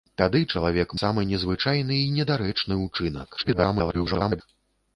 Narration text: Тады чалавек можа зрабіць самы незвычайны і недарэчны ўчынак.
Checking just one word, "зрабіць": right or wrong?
wrong